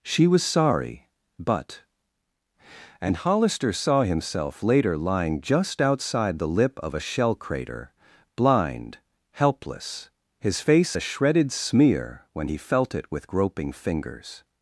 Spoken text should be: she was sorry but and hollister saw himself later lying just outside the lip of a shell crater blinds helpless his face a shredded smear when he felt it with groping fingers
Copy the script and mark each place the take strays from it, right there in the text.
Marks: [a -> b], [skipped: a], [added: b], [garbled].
she was sorry but and hollister saw himself later lying just outside the lip of a shell crater [blinds -> blind] helpless his face a shredded smear when he felt it with groping fingers